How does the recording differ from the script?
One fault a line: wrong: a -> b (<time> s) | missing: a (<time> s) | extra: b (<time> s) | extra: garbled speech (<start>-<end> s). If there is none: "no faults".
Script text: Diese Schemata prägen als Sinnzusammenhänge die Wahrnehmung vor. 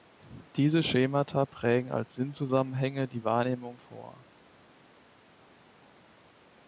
no faults